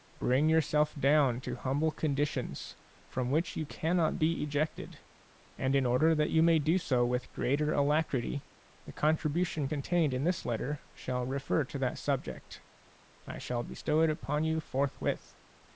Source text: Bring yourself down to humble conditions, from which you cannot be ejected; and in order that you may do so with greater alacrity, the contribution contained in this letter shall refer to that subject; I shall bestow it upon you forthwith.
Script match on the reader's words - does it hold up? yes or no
yes